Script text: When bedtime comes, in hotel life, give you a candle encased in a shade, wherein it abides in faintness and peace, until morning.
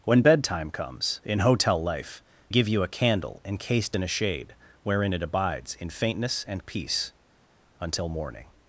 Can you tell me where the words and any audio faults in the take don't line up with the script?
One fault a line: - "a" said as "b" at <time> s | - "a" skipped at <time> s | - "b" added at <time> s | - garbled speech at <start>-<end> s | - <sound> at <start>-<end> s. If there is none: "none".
none